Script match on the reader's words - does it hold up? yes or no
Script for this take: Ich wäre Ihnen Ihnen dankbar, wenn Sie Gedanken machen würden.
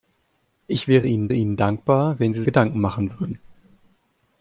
yes